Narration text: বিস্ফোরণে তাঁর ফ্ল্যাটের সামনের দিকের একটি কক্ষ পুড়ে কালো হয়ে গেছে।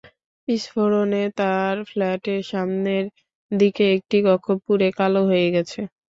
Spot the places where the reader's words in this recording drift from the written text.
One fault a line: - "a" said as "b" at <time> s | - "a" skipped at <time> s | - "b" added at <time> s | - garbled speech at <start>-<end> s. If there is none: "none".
none